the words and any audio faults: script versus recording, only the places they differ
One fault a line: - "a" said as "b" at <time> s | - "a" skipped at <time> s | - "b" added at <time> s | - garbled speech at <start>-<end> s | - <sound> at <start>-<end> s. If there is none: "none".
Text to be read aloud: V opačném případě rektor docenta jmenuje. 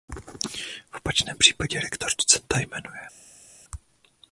none